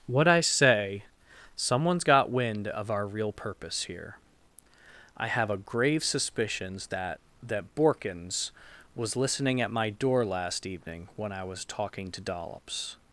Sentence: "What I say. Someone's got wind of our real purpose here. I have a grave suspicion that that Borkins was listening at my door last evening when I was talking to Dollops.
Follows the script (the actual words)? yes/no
no